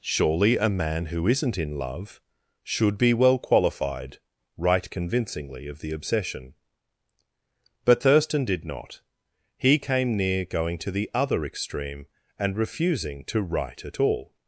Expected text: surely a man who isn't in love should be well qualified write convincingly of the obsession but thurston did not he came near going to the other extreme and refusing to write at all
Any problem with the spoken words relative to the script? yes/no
no